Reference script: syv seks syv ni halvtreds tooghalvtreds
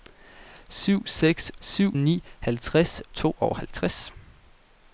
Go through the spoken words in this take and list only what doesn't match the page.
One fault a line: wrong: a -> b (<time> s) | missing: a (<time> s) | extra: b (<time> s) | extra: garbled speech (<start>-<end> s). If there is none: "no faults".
no faults